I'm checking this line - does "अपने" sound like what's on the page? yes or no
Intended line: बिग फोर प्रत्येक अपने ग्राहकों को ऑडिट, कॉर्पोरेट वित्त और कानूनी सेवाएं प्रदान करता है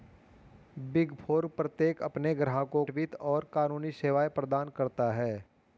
yes